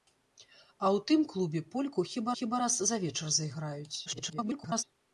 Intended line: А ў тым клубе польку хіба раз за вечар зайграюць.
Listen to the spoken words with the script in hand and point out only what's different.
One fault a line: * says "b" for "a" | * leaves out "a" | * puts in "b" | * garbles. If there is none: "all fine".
* puts in "хіба"
* garbles